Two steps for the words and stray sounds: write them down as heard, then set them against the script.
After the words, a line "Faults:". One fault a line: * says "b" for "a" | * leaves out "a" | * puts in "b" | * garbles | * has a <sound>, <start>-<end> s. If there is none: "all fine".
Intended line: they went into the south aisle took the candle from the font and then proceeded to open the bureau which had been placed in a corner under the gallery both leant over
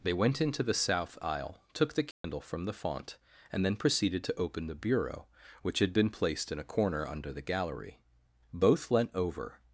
they went into the south aisle took the candle from the font and then proceeded to open the bureau which had been placed in a corner under the gallery both leant over
Faults:
* has a dropout, 2.1-2.2 s